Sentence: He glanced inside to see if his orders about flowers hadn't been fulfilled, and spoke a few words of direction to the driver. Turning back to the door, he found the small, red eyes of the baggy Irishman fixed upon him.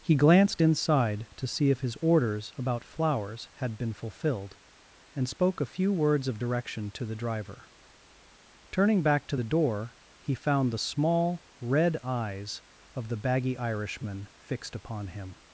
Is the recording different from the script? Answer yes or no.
yes